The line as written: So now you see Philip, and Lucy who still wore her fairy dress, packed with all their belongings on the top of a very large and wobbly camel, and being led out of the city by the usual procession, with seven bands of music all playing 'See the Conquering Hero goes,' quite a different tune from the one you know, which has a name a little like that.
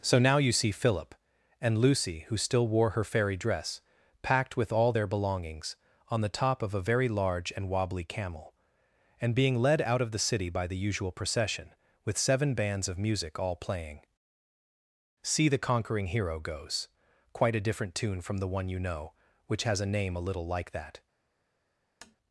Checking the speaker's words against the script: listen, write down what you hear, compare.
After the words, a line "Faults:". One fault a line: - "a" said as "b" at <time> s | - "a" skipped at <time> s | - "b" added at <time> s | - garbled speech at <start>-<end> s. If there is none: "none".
So now you see Philip, and Lucy who still wore her fairy dress, packed with all their belongings on the top of a very large and wobbly camel, and being led out of the city by the usual procession, with seven bands of music all playing 'See the Conquering Hero goes,' quite a different tune from the one you know, which has a name a little like that.
Faults:
none